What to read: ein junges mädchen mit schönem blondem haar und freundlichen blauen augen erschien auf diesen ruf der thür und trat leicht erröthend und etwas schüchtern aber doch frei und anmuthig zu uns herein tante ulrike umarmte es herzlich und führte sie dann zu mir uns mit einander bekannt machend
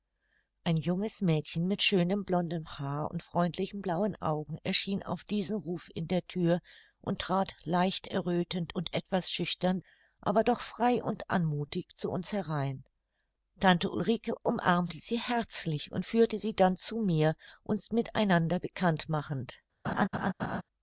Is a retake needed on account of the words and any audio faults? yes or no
yes